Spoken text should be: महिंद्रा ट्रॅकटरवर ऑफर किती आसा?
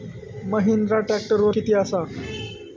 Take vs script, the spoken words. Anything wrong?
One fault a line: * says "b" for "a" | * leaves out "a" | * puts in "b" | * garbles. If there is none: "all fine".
* leaves out "ऑफर"